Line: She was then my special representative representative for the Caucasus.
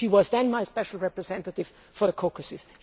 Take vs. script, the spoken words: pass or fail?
fail